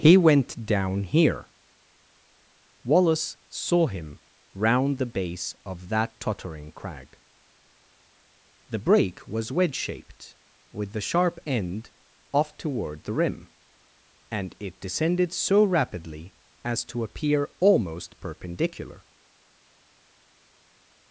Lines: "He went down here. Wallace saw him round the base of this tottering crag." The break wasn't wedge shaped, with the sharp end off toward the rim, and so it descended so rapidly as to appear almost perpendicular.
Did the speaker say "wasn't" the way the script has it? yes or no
no